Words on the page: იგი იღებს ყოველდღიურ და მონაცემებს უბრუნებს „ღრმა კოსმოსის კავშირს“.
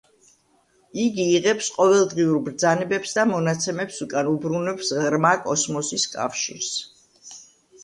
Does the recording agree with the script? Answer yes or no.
no